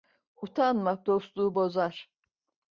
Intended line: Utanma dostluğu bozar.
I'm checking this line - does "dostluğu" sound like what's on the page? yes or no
yes